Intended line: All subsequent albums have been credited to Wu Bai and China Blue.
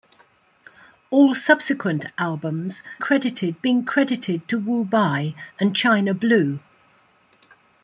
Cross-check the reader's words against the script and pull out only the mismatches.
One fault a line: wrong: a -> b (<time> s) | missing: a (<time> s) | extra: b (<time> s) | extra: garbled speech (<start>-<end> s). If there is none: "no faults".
wrong: have -> credited (3.0 s)